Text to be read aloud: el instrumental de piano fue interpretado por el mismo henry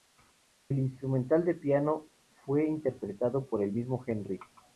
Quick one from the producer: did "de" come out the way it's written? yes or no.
yes